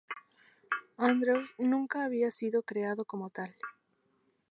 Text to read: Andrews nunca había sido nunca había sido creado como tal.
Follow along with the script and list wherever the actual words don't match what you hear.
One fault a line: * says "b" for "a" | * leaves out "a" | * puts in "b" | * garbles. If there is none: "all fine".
* leaves out "nunca había sido"